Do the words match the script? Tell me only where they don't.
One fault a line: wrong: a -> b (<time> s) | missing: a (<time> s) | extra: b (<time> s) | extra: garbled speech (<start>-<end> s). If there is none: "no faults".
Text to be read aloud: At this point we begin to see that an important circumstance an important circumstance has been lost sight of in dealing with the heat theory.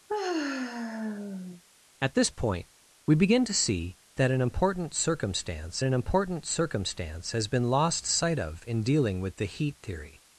no faults